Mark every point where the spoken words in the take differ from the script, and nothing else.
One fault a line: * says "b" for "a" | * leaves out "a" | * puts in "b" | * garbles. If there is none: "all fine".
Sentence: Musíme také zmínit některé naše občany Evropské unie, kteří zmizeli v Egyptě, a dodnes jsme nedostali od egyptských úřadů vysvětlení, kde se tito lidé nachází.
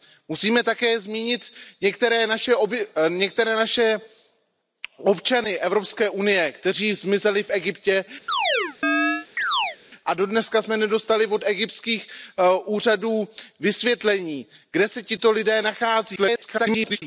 * garbles